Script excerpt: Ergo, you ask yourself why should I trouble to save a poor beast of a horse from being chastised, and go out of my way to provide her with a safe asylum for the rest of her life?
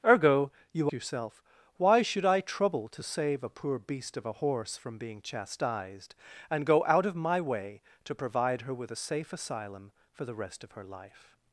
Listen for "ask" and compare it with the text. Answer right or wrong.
wrong